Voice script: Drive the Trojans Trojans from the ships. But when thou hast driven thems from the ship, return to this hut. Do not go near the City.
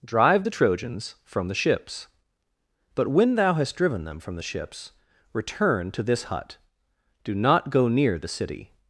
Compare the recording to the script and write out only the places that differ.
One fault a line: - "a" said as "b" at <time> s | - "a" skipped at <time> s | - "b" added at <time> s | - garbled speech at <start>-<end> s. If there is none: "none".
- "Trojans" skipped at 1.1 s
- "thems" said as "them" at 4.0 s
- "ship" said as "ships" at 4.4 s